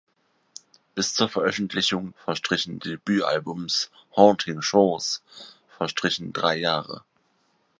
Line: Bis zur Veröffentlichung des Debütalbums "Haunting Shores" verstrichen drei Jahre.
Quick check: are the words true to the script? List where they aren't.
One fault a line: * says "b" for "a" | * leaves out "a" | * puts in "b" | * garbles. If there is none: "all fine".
* says "verstrichen" for "des"